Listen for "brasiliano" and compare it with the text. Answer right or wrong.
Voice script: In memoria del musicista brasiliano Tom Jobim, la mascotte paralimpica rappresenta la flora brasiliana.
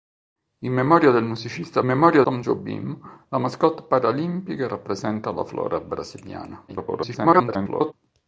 wrong